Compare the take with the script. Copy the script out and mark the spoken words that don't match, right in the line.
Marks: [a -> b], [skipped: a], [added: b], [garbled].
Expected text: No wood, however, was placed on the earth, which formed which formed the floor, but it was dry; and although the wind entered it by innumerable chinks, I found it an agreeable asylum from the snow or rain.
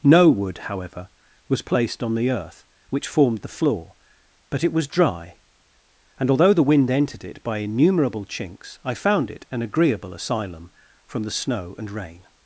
No wood, however, was placed on the earth, which formed [skipped: which formed] the floor, but it was dry; and although the wind entered it by innumerable chinks, I found it an agreeable asylum from the snow [or -> and] rain.